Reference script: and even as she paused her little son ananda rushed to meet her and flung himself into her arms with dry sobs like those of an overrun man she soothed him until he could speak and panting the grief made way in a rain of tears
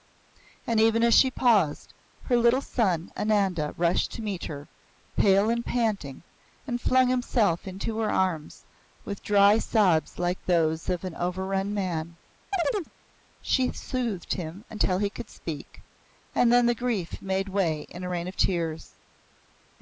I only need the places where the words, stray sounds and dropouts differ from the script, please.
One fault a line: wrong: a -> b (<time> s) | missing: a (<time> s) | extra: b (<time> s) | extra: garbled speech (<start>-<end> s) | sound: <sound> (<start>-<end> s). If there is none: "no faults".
extra: pale (5.2 s)
extra: panting and (5.6 s)
sound: chirp (12.5-12.9 s)
wrong: panting -> then (16.5 s)